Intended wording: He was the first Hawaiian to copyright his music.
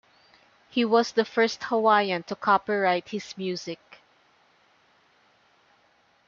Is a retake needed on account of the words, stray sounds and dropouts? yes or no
no